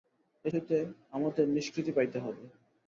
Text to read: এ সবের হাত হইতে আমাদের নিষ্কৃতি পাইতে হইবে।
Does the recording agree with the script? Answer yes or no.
no